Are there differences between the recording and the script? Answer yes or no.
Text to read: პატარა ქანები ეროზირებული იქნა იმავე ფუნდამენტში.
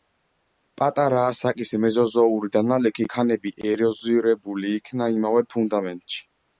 yes